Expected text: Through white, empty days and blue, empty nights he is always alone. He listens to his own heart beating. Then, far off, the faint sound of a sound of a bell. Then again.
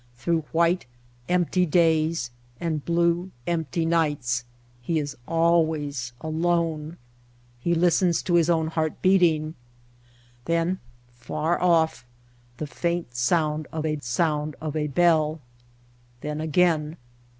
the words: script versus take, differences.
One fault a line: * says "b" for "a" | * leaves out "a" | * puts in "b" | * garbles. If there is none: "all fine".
all fine